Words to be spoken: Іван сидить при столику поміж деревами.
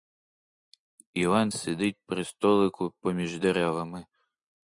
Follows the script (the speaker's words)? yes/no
yes